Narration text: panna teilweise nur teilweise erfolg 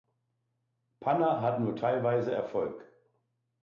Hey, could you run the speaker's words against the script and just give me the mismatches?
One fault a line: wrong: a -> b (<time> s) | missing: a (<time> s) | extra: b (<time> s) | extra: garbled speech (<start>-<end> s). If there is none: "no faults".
wrong: teilweise -> hat (1.4 s)